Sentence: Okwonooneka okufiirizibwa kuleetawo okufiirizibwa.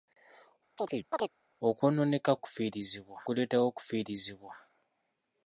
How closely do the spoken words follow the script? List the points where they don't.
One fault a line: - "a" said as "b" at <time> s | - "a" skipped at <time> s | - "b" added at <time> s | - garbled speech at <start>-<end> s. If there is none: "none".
none